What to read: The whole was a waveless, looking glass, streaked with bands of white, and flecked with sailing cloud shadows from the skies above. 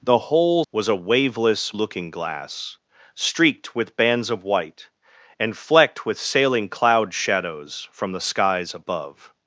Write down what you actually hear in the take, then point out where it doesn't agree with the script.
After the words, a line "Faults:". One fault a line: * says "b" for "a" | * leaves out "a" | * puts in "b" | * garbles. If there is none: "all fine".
The whole was a waveless, looking glass, streaked with bands of white, and flecked with sailing cloud shadows from the skies above.
Faults:
all fine